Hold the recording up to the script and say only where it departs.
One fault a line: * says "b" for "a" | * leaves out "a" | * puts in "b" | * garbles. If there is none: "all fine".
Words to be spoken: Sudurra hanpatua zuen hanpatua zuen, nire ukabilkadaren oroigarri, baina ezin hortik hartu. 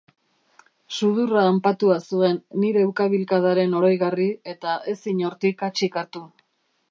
* leaves out "hanpatua zuen"
* says "eta" for "baina"
* puts in "hatsik"